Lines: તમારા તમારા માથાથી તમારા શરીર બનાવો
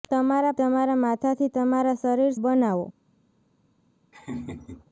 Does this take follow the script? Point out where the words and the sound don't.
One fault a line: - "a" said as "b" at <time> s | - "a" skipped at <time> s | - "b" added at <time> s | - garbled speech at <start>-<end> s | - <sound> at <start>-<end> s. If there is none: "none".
- laugh at 4.1-4.9 s